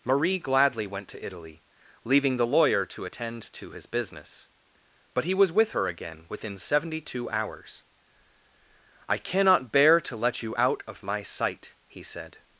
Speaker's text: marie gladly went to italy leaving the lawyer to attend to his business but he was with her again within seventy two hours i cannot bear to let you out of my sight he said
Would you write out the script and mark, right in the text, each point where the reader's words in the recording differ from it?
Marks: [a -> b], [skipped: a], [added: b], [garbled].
marie gladly went to italy leaving the lawyer to attend to his business but he was with her again within seventy two hours i cannot bear to let you out of my sight he said